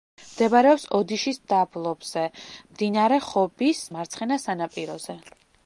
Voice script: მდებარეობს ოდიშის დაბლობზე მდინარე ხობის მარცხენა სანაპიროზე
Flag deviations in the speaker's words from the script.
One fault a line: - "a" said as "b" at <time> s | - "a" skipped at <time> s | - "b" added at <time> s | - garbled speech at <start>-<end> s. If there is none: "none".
none